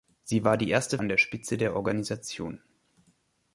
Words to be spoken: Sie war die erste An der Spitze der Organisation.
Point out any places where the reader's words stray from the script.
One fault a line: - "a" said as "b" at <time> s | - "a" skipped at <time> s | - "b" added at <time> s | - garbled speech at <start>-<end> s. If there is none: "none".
none